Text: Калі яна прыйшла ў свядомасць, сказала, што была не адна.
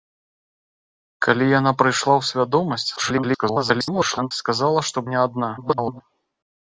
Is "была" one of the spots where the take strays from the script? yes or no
yes